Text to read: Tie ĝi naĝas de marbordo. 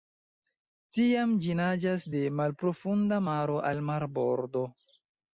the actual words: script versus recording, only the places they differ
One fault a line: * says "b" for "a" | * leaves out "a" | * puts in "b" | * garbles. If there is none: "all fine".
* says "Tiam" for "Tie"
* puts in "malprofunda maro al"